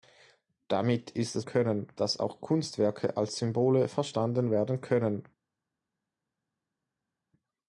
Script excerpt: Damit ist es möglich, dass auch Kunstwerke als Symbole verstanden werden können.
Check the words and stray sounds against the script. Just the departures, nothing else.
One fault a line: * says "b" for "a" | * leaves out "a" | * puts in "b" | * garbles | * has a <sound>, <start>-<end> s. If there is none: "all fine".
* says "können" for "möglich"